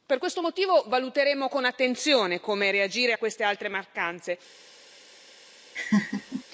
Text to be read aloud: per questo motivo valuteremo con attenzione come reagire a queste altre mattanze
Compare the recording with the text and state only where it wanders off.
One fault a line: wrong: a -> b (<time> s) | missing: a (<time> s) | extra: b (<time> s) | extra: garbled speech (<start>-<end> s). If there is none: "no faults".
no faults